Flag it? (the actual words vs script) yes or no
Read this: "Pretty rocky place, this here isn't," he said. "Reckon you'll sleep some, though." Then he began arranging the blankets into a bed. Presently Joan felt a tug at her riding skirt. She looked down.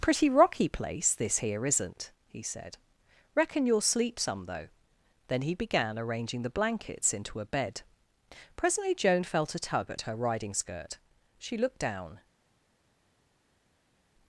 no